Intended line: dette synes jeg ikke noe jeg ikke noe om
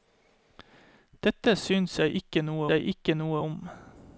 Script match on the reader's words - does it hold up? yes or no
yes